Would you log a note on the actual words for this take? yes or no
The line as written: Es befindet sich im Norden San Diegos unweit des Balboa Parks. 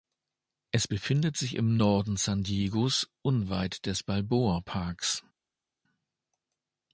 no